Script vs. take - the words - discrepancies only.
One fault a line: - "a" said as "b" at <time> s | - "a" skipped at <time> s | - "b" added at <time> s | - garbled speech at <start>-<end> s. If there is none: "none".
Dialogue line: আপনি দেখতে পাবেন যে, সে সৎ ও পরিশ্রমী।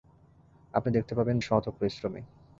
- "যে সে" skipped at 1.4 s